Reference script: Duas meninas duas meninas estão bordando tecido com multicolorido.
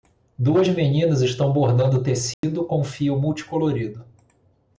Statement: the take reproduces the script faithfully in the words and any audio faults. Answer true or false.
false